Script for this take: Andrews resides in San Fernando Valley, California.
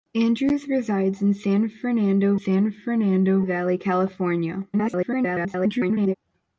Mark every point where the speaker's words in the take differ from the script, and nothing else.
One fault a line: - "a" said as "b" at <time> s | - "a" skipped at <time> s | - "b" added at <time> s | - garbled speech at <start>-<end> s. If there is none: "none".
- "San Fernando" added at 2.3 s
- garbled speech at 4.7-6.1 s